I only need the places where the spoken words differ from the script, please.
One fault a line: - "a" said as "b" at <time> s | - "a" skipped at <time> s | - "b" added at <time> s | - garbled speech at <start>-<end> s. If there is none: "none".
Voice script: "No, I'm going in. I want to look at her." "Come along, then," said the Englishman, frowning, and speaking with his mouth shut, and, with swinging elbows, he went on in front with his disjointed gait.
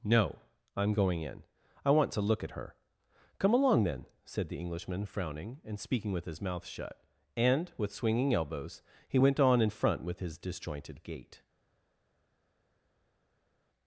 none